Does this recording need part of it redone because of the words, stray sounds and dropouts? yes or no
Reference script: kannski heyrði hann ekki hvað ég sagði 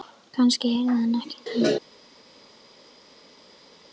yes